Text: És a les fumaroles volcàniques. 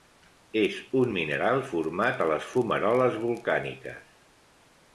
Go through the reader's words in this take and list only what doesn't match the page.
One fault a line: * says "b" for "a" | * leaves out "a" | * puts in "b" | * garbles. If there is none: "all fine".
* puts in "un mineral format"